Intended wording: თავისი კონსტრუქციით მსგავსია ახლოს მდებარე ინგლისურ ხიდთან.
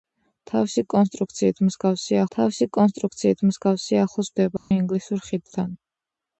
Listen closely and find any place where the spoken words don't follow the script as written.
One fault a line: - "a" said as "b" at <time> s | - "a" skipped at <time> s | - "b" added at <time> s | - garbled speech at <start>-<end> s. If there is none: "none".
- "თავისი კონსტრუქციით მსგავსია" added at 2.4 s